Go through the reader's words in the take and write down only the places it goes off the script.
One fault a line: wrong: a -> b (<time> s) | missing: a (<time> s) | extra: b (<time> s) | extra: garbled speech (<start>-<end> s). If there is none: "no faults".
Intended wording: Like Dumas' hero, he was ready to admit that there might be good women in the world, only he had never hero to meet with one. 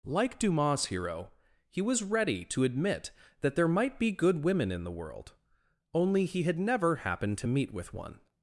wrong: hero -> happened (7.0 s)